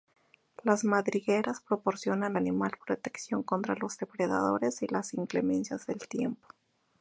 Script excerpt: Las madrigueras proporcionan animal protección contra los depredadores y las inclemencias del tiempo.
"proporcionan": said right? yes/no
yes